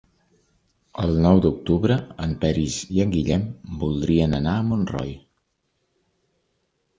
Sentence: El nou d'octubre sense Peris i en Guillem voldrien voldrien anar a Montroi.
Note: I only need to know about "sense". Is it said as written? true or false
false